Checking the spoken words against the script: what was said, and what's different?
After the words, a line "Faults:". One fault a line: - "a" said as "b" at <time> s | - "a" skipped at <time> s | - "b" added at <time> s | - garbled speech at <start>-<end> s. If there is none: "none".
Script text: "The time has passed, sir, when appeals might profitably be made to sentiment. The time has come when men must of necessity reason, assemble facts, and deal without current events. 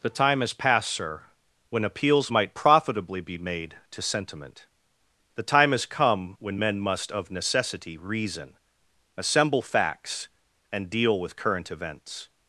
"The time has passed, sir, when appeals might profitably be made to sentiment. The time has come when men must of necessity reason, assemble facts, and deal with current events.
Faults:
- "without" said as "with" at 11.2 s